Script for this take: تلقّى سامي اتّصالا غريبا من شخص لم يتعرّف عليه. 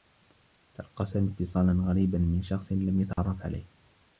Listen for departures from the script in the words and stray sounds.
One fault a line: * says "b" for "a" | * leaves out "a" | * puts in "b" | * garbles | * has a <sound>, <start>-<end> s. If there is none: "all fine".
* has a dropout, 3.1-3.2 s